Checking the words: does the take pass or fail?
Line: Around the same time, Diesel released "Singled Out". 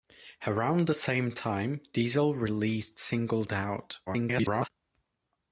fail